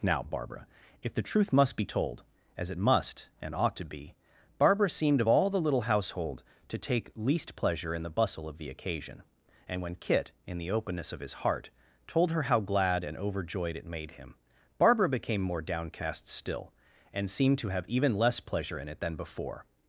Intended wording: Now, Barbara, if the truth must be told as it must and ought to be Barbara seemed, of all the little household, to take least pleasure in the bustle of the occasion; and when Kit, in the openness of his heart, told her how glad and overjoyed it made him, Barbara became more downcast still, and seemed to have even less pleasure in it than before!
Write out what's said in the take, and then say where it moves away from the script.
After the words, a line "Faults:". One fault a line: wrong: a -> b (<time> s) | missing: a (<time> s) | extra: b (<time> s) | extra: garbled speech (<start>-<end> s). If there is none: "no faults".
Now, Barbara, if the truth must be told as it must and ought to be Barbara seemed, of all the little household, to take least pleasure in the bustle of the occasion; and when Kit, in the openness of his heart, told her how glad and overjoyed it made him, Barbara became more downcast still, and seemed to have even less pleasure in it than before!
Faults:
no faults